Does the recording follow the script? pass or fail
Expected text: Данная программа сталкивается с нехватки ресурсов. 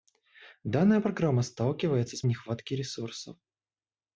pass